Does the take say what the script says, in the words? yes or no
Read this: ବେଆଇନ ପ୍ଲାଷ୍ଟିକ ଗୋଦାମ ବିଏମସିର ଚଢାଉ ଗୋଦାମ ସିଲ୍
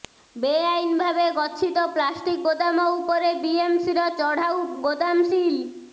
no